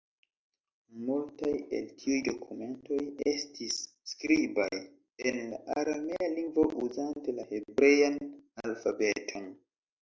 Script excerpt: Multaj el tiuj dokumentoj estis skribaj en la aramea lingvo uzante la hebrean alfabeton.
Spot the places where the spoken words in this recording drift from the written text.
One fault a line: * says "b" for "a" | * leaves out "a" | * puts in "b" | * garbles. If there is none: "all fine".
all fine